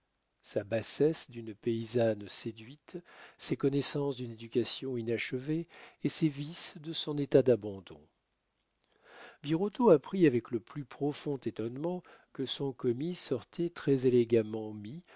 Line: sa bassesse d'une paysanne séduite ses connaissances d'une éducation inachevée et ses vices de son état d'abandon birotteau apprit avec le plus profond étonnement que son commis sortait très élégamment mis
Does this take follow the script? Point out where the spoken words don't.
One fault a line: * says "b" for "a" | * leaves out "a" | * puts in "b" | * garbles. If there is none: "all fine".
all fine